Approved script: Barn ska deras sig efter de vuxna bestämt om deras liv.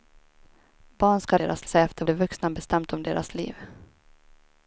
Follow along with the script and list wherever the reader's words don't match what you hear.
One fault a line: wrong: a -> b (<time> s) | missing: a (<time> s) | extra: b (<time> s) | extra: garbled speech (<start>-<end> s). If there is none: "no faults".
no faults